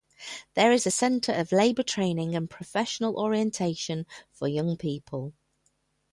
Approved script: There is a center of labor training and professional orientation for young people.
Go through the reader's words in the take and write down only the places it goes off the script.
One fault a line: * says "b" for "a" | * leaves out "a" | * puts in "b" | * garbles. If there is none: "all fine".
all fine